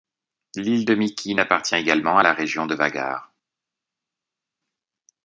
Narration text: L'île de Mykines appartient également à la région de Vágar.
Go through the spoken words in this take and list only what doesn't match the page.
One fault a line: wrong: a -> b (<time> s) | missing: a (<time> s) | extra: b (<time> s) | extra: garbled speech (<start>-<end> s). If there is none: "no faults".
no faults